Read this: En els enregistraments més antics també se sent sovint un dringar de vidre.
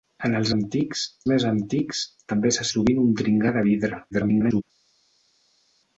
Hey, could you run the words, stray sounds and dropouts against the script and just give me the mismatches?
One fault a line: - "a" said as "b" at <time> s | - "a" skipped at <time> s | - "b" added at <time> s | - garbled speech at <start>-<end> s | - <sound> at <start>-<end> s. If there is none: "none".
- "enregistraments" said as "antics" at 0.5 s
- "sent" skipped at 2.7 s
- garbled speech at 4.1-4.6 s